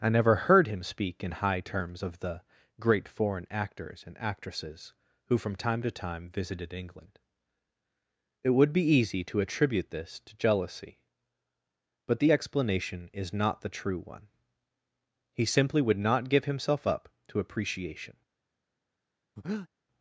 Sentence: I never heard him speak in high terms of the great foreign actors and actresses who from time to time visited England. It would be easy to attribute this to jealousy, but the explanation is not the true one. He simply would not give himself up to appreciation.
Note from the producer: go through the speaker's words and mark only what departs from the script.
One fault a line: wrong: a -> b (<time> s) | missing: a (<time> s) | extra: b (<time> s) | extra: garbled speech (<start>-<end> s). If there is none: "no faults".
no faults